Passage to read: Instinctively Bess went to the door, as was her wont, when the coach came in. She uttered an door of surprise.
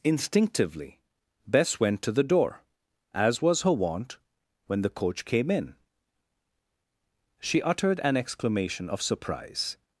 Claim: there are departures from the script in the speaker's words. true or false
true